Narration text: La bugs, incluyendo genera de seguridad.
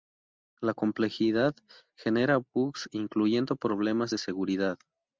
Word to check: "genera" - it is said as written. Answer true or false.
false